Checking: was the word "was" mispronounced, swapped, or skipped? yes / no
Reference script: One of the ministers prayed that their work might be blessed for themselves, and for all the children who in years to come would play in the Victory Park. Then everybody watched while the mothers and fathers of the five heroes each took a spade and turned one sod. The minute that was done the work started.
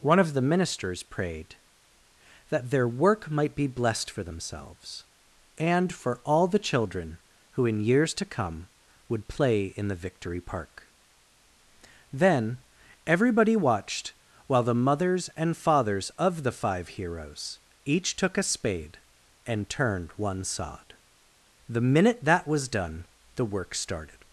no